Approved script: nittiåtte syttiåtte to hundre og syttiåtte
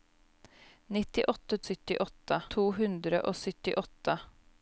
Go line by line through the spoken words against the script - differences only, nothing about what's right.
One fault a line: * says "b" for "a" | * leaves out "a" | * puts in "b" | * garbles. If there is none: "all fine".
all fine